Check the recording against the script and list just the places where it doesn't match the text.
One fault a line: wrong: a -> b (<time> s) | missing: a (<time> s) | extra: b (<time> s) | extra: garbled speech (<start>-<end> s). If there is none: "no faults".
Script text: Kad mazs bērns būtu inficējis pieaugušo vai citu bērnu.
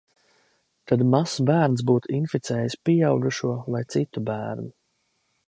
no faults